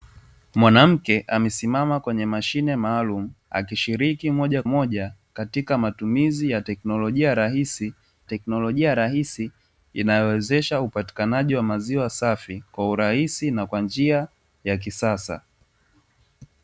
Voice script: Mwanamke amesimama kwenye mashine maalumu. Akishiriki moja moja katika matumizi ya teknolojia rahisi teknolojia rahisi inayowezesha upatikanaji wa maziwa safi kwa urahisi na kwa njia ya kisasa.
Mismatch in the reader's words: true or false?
false